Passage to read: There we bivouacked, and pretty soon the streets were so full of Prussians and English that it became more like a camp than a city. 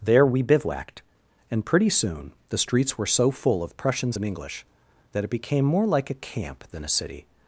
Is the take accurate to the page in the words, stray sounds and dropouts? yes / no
yes